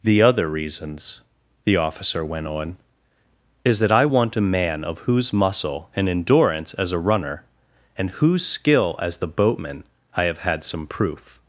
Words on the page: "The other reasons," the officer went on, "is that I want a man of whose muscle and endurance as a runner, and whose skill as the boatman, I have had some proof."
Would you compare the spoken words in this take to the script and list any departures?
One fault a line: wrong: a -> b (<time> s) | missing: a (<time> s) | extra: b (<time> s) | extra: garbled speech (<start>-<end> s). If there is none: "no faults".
no faults